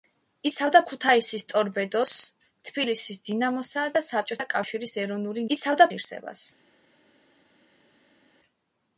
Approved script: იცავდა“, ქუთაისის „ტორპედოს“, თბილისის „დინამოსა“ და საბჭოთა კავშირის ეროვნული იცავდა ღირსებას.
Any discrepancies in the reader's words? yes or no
no